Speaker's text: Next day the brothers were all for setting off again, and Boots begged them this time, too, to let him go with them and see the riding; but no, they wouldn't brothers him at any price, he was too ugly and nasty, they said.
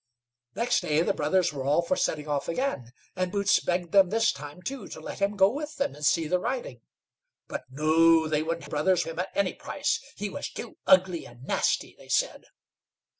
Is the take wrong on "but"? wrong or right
right